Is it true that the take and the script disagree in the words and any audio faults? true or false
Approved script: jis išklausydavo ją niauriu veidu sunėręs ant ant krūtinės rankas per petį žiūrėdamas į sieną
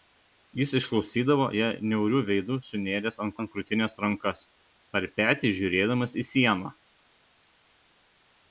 false